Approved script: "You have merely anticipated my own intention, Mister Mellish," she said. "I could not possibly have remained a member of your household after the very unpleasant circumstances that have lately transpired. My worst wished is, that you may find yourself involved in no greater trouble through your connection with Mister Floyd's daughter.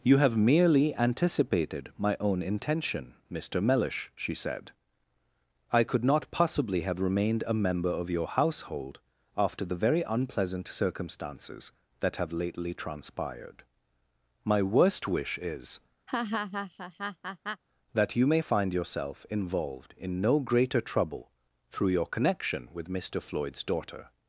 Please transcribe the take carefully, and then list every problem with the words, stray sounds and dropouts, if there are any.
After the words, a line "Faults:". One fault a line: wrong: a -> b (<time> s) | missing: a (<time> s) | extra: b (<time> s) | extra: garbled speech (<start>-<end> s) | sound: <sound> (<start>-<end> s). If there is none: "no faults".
"You have merely anticipated my own intention, Mister Mellish," she said. "I could not possibly have remained a member of your household after the very unpleasant circumstances that have lately transpired. My worst wish is, that you may find yourself involved in no greater trouble through your connection with Mister Floyd's daughter.
Faults:
wrong: wished -> wish (15.1 s)
sound: laugh (16.1-17.6 s)